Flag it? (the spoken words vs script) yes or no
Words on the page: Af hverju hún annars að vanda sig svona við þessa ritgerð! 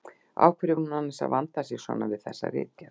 no